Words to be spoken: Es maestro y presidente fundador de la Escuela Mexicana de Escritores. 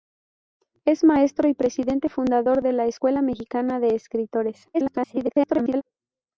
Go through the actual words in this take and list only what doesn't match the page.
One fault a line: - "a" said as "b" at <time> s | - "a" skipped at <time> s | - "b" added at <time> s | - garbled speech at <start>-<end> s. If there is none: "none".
- garbled speech at 4.7-5.8 s